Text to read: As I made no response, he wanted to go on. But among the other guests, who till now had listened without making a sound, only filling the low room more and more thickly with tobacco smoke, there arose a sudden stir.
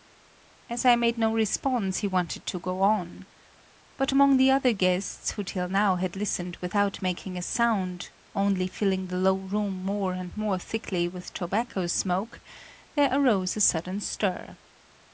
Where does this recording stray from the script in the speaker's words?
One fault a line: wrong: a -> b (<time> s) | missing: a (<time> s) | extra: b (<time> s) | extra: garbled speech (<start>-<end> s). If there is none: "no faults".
no faults